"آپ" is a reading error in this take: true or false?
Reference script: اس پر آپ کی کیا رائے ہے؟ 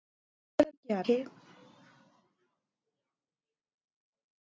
true